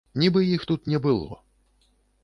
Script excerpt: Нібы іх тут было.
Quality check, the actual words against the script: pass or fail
fail